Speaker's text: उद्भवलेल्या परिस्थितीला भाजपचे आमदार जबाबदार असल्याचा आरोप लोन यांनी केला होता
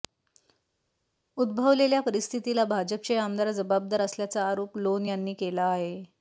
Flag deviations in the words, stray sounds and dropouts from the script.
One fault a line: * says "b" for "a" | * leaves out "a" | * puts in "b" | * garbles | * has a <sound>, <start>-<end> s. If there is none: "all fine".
* says "आहे" for "होता"